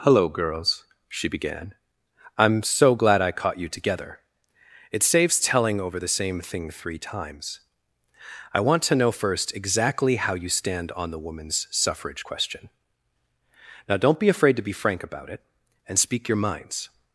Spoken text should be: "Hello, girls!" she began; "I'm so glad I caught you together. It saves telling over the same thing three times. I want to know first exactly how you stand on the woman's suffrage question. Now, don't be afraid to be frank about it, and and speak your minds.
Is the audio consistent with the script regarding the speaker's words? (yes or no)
no